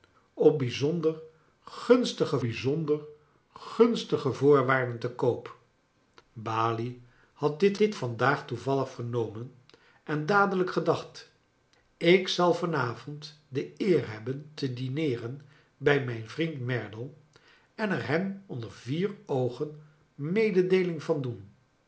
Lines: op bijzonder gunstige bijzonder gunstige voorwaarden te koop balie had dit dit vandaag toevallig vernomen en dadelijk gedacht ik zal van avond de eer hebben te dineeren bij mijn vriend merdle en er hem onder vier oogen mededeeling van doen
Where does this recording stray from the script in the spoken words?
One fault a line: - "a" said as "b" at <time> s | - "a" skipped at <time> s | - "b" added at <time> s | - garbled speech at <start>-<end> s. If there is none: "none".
none